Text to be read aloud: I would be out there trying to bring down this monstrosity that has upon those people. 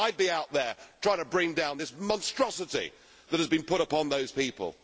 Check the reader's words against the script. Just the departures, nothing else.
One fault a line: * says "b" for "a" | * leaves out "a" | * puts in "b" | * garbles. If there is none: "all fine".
* puts in "been put"